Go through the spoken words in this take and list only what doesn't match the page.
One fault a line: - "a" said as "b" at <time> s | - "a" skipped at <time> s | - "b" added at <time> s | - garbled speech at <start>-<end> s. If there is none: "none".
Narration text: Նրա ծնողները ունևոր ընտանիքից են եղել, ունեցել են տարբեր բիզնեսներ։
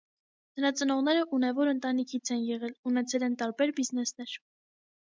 none